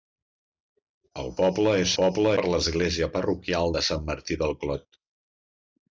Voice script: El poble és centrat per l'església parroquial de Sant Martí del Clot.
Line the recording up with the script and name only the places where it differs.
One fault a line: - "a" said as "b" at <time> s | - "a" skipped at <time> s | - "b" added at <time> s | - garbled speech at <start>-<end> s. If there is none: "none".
- "centrat" said as "poble" at 2.0 s